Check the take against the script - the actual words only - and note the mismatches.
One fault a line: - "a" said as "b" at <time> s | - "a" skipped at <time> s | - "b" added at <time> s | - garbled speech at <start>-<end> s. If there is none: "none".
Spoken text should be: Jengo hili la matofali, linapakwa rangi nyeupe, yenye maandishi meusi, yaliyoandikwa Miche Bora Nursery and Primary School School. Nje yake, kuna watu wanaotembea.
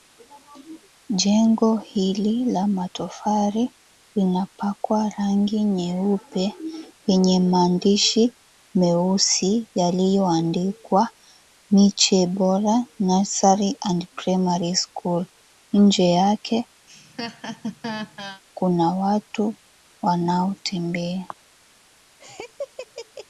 - "School" skipped at 15.2 s